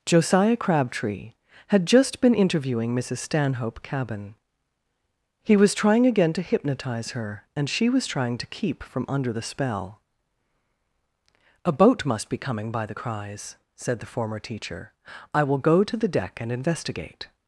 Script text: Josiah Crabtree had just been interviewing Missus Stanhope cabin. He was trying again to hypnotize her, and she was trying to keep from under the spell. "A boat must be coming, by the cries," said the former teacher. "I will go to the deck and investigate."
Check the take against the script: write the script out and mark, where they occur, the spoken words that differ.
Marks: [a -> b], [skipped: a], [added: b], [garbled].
Josiah Crabtree had just been interviewing Missus Stanhope cabin. He was trying again to hypnotize her, and she was trying to keep from under the spell. "A boat must be coming, by the cries," said the former teacher. "I will go to the deck and investigate."